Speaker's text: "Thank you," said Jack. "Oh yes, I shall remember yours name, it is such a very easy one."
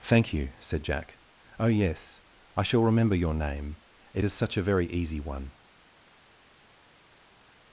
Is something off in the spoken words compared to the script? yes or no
yes